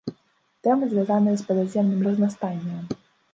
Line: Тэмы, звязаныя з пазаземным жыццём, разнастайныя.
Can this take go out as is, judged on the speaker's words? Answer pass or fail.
fail